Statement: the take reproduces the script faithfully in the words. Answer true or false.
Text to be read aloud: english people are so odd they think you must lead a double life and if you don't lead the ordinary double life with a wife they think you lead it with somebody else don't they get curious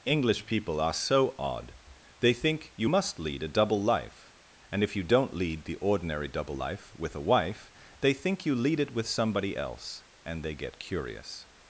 false